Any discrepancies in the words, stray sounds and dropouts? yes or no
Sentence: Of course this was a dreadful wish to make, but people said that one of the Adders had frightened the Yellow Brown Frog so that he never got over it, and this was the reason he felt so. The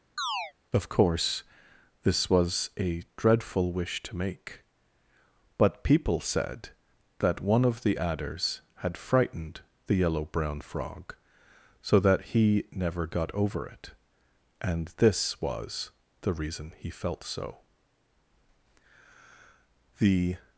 yes